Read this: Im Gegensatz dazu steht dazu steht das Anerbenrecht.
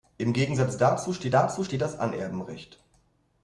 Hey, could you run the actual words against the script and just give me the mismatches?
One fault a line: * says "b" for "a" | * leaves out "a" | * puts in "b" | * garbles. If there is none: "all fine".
all fine